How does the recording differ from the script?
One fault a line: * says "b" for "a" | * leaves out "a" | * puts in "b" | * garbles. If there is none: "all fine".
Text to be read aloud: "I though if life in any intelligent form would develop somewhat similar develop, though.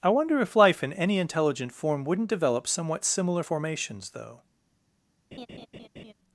* says "wonder" for "though"
* says "wouldn't" for "would"
* says "formations" for "develop"